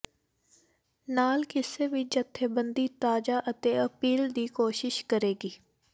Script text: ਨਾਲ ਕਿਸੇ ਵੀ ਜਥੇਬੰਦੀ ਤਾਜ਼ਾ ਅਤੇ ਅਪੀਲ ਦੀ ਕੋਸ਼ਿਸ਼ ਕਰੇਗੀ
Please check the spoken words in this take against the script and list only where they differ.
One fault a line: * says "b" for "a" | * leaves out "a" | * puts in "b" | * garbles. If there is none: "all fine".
all fine